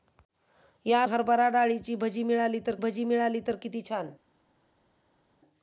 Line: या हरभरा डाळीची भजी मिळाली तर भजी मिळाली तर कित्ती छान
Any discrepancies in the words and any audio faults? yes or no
no